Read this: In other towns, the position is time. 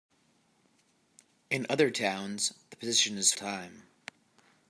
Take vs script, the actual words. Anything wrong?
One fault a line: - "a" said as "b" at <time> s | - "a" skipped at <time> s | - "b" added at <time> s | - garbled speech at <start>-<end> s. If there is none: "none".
none